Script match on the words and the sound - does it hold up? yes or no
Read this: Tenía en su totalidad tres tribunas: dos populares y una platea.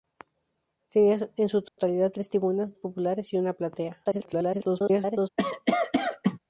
no